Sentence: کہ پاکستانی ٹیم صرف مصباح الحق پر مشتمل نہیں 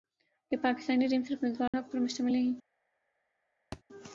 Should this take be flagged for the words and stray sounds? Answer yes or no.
yes